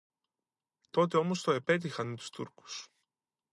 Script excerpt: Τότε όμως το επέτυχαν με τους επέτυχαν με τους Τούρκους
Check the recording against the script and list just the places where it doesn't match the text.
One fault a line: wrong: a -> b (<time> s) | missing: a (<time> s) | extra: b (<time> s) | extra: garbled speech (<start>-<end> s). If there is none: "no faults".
missing: επέτυχαν με τους (2.3 s)